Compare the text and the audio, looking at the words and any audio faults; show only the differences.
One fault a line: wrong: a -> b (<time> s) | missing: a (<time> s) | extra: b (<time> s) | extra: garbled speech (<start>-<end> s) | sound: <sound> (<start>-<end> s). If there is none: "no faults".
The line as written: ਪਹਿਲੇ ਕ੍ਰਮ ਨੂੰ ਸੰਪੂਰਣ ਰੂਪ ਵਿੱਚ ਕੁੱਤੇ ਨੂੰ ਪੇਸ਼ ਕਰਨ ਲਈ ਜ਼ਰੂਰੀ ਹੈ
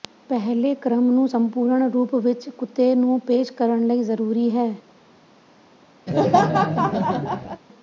sound: laugh (6.1-7.6 s)